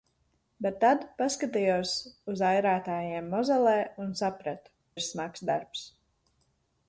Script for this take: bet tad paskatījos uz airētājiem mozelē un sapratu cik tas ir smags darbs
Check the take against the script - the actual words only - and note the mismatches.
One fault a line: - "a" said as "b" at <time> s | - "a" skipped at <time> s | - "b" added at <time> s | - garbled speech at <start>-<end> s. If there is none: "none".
- "cik tas" skipped at 4.8 s